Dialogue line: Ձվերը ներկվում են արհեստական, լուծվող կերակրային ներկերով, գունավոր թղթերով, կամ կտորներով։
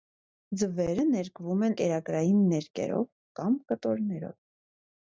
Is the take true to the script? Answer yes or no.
no